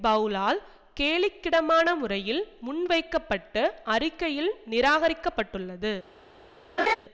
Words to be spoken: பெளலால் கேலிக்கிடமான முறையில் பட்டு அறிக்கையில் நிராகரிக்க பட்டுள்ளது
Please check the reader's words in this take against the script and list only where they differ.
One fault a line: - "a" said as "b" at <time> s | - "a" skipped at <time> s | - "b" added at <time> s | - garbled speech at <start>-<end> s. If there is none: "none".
- "முன்வைக்க" added at 2.6 s